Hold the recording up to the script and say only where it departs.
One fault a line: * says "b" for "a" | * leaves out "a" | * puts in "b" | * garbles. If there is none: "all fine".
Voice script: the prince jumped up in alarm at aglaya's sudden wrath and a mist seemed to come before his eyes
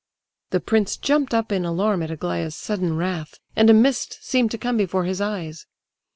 all fine